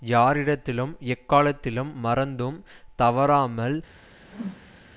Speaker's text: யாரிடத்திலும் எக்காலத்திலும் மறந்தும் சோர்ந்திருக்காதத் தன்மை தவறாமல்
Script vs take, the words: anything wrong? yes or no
yes